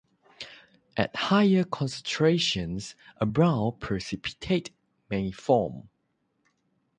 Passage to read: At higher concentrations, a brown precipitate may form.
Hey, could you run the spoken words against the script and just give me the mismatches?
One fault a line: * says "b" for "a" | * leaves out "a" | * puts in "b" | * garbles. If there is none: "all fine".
all fine